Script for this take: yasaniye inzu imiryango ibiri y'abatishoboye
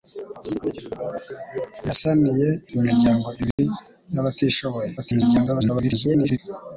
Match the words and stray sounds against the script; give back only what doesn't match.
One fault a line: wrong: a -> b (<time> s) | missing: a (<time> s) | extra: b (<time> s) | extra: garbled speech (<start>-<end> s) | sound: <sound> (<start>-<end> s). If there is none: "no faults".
missing: inzu (2.5 s)
sound: dropout (3.5-3.6 s)
extra: garbled speech (5.0-6.4 s)